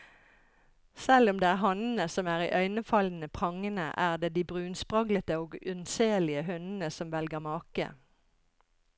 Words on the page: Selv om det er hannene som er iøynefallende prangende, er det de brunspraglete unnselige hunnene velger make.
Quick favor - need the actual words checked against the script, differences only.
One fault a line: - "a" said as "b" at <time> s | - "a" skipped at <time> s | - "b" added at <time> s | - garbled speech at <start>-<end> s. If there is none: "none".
- "og" added at 5.4 s
- "som" added at 6.9 s